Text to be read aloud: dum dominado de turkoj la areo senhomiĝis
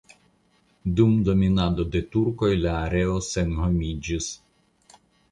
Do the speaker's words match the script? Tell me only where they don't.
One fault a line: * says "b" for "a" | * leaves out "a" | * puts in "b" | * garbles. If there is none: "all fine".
all fine